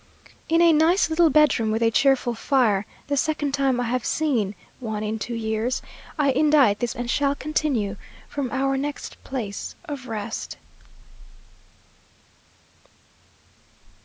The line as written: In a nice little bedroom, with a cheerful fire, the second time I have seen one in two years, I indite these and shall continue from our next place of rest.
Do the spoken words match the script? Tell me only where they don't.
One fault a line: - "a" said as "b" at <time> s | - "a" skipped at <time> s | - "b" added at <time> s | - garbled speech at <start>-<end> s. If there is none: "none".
none